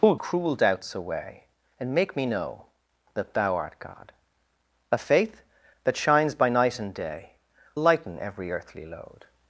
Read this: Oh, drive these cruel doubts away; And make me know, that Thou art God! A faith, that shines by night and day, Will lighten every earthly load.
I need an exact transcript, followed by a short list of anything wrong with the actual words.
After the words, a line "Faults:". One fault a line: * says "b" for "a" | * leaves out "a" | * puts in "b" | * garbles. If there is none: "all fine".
Oh, cruel doubts away; And make me know, that Thou art God! A faith, that shines by night and day, Lighten every earthly load.
Faults:
* leaves out "drive these"
* leaves out "Will"